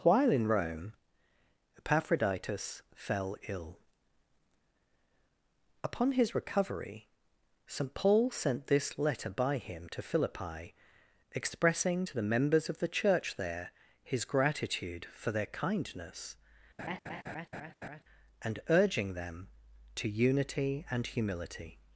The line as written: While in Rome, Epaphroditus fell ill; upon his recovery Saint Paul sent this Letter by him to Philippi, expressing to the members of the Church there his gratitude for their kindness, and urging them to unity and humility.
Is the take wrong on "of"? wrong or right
right